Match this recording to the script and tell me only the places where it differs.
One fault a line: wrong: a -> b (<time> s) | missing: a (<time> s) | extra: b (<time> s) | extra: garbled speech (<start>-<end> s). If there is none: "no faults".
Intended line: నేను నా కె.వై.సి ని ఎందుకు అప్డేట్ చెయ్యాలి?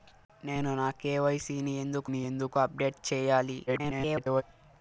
extra: ని ఎందుకు (2.1 s)
extra: garbled speech (3.7-4.4 s)